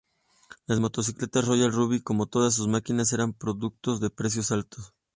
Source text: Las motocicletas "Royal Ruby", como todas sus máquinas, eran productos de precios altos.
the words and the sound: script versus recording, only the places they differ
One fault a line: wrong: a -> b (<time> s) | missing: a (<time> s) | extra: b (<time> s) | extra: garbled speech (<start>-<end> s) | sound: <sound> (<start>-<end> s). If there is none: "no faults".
no faults